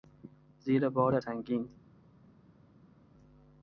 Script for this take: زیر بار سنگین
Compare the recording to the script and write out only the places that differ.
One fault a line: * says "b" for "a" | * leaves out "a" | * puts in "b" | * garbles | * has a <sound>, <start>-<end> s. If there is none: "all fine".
all fine